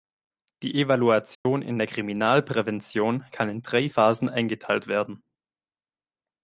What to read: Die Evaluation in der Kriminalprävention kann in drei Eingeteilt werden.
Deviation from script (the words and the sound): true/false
true